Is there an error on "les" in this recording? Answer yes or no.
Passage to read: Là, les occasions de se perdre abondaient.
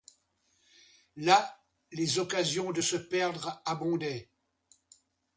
no